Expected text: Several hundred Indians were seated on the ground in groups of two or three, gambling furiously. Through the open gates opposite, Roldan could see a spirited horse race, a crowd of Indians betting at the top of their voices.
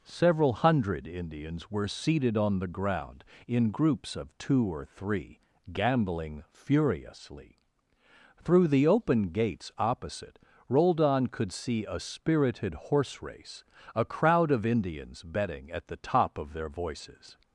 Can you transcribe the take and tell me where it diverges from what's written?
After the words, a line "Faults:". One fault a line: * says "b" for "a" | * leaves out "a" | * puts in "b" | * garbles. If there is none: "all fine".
Several hundred Indians were seated on the ground in groups of two or three, gambling furiously. Through the open gates opposite, Roldan could see a spirited horse race, a crowd of Indians betting at the top of their voices.
Faults:
all fine